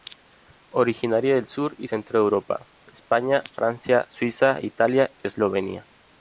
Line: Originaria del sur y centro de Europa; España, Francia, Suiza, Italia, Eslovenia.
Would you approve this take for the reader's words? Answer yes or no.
yes